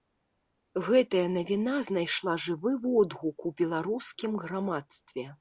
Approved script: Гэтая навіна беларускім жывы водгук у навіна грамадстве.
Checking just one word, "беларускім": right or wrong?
wrong